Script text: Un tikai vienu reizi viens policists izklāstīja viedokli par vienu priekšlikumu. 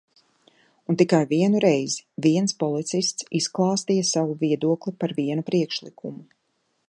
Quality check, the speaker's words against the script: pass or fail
fail